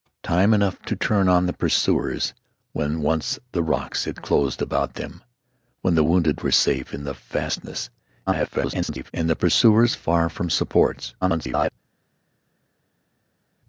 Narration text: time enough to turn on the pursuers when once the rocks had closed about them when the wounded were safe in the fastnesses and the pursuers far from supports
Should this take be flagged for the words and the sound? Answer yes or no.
yes